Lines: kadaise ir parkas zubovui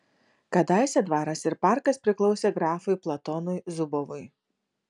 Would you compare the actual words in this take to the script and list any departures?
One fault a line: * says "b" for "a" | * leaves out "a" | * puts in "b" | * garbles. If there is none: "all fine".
* puts in "dvaras"
* puts in "priklausė grafui platonui"